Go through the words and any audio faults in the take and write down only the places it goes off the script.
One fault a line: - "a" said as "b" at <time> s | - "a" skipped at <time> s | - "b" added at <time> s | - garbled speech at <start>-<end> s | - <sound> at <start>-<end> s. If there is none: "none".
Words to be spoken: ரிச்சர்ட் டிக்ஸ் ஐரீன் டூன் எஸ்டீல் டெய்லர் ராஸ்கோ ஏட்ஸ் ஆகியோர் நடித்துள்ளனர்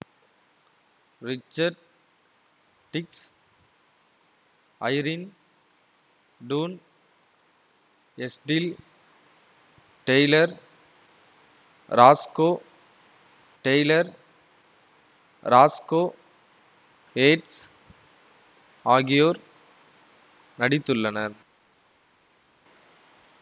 - "டெய்லர் ராஸ்கோ" added at 13.6 s